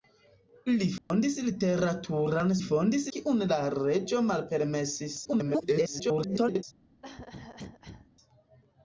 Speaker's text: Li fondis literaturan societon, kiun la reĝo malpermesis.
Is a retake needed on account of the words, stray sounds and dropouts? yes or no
yes